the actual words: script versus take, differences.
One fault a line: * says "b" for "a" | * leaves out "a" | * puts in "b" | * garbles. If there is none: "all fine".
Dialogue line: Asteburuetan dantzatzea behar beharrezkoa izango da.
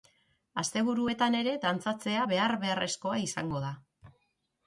* puts in "ere"